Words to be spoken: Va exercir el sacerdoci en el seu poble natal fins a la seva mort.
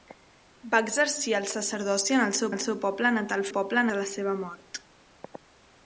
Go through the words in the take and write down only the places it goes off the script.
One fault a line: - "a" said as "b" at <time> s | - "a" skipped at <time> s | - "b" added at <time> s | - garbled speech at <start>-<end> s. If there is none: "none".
- "el seu" added at 2.5 s
- "fins" said as "poble" at 3.6 s